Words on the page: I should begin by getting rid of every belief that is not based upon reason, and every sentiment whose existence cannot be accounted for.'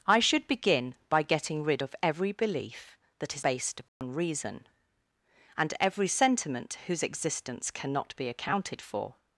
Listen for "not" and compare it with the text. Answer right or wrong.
wrong